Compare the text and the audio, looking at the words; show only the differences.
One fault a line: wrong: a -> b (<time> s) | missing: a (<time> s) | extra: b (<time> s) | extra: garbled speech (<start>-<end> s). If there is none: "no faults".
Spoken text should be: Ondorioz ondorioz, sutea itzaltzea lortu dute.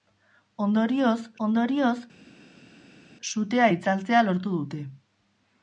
no faults